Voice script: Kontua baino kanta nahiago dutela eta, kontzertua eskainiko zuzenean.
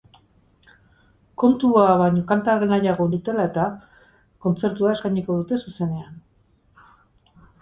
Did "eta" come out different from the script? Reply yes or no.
no